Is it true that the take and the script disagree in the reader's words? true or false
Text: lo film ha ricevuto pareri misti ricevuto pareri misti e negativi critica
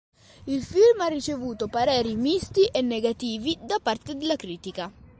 true